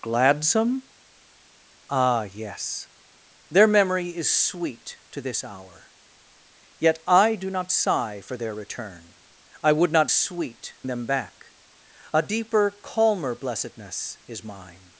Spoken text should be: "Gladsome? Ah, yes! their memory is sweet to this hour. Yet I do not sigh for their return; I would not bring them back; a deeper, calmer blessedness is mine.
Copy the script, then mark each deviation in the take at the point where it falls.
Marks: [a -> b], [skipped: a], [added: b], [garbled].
"Gladsome? Ah, yes! their memory is sweet to this hour. Yet I do not sigh for their return; I would not [bring -> sweet] them back; a deeper, calmer blessedness is mine.